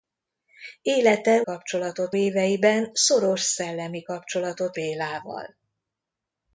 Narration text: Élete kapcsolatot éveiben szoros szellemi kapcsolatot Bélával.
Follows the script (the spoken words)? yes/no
yes